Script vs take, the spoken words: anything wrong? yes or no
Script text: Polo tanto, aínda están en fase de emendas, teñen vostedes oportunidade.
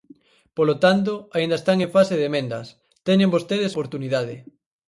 no